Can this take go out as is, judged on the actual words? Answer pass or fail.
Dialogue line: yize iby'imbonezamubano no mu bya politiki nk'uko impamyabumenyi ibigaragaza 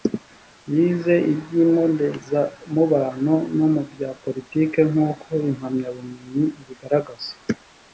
pass